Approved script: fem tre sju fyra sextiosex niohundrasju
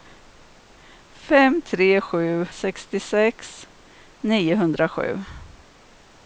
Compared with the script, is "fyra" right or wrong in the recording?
wrong